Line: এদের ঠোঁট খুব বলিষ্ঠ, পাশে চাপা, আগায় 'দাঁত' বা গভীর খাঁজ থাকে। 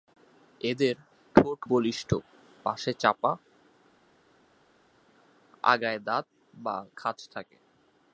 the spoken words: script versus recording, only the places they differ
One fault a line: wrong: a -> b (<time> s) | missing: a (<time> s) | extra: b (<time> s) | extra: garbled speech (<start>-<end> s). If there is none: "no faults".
missing: খুব (1.6 s)
missing: গভীর (6.8 s)